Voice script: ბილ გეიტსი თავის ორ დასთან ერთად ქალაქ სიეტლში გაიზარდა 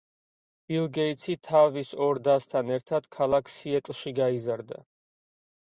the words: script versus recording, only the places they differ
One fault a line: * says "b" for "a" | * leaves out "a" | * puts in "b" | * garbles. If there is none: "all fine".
all fine